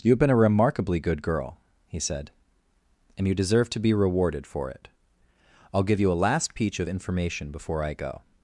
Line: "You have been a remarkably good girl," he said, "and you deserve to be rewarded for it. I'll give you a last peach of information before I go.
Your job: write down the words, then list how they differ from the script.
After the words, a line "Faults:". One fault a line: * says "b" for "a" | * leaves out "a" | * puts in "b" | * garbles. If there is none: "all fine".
"You have been a remarkably good girl," he said, "and you deserve to be rewarded for it. I'll give you a last peach of information before I go.
Faults:
all fine